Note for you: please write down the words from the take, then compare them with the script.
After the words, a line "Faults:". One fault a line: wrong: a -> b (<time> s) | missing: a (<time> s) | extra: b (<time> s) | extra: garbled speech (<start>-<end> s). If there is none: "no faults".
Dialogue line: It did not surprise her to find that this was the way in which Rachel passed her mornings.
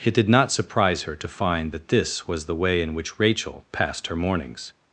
It did not surprise her to find that this was the way in which Rachel passed her mornings.
Faults:
no faults